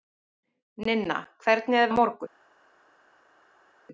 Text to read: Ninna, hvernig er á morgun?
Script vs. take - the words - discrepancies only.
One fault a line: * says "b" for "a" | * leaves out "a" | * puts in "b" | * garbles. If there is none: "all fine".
all fine